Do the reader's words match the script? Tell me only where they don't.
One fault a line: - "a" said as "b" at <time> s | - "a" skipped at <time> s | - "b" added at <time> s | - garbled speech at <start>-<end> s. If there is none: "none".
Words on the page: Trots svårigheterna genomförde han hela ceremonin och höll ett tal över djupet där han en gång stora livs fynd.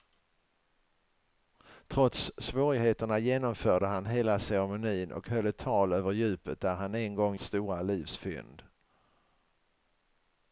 none